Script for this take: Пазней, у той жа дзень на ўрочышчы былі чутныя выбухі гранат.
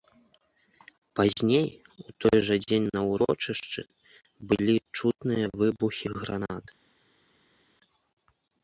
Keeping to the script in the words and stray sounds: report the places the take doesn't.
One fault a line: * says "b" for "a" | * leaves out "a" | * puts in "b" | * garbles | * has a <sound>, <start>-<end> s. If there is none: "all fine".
all fine